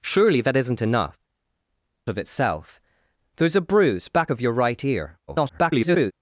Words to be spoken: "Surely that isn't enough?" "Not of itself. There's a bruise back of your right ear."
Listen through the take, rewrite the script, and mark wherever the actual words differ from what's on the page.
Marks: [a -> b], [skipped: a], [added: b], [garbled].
"Surely that isn't enough?" [skipped: "Not] of itself. There's a bruise back of your right ear." [garbled]